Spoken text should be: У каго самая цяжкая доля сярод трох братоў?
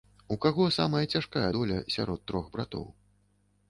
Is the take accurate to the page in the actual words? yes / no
yes